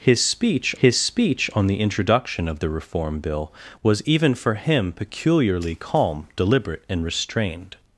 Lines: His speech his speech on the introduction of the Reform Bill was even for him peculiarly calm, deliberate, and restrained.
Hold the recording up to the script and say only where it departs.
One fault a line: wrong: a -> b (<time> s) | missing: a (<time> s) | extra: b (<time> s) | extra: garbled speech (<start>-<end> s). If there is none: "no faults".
no faults